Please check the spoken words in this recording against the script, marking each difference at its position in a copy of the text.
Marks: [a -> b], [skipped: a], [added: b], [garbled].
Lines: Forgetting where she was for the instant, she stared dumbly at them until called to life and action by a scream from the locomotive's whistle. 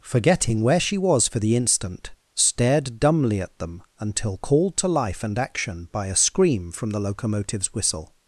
Forgetting where she was for the instant, [skipped: she] stared dumbly at them until called to life and action by a scream from the locomotive's whistle.